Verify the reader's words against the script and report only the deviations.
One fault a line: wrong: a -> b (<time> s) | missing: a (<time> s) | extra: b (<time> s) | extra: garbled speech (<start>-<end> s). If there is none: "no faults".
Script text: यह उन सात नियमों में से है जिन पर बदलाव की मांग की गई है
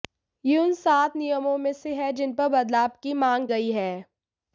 missing: की (3.5 s)